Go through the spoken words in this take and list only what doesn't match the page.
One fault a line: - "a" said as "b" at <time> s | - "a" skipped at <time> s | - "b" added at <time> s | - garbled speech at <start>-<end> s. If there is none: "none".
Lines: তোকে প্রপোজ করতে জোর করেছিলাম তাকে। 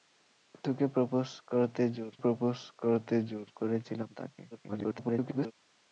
- "প্রপোজ করতে জোর" added at 2.2 s
- garbled speech at 4.5-5.5 s